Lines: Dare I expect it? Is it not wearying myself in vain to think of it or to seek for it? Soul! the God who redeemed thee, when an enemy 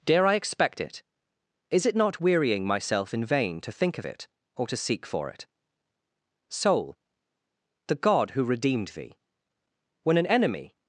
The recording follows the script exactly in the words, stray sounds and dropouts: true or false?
true